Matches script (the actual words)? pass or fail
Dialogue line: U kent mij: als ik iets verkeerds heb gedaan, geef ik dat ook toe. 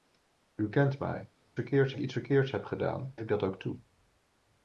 fail